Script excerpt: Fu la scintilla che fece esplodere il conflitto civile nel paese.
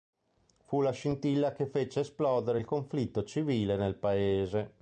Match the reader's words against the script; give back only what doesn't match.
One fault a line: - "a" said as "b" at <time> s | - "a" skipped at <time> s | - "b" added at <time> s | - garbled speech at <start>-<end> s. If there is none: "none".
none